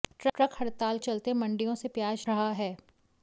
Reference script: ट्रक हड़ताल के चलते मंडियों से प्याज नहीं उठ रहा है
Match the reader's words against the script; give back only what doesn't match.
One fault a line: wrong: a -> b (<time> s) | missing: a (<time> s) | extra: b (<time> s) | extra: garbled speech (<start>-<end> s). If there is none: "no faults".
missing: के (1.0 s)
missing: नहीं उठ (2.3 s)